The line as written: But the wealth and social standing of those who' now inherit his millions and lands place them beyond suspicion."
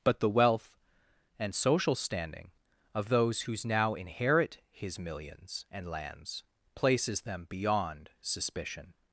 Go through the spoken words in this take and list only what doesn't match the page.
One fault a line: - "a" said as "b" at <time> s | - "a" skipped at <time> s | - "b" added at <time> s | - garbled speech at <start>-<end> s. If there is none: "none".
- "place" said as "places" at 6.7 s